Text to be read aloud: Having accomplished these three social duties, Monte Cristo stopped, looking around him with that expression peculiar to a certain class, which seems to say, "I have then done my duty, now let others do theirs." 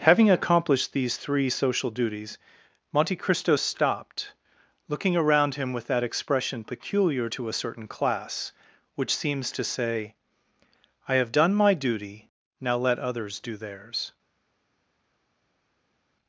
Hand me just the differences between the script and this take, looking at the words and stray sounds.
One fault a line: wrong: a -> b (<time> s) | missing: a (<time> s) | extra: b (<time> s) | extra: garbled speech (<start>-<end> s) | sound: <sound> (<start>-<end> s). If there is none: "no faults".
missing: then (11.3 s)